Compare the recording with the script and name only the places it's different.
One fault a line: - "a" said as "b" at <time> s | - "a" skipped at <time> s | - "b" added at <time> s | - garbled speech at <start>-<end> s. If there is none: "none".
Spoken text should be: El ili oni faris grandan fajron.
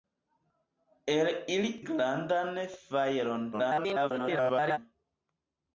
- "oni faris" skipped at 1.7 s
- garbled speech at 3.5-4.8 s